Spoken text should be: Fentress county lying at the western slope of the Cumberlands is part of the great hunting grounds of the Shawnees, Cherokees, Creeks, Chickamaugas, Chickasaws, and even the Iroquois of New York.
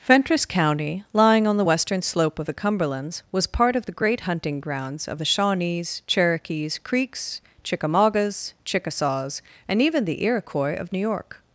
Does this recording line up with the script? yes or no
no